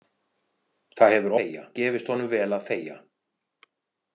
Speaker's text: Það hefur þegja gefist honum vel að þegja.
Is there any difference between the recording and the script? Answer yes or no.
no